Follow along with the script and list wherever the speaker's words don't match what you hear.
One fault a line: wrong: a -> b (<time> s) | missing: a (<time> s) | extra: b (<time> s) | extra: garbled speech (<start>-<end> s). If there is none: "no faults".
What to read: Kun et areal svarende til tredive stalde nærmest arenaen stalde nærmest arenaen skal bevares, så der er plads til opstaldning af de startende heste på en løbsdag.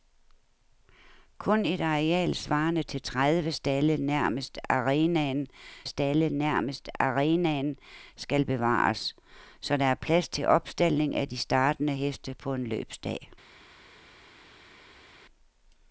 no faults